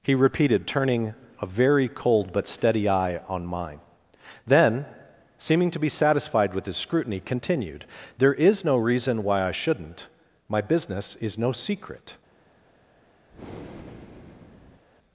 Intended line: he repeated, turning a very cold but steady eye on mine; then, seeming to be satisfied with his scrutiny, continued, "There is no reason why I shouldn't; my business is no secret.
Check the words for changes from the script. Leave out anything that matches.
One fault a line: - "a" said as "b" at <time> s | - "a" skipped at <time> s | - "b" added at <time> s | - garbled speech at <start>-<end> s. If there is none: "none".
none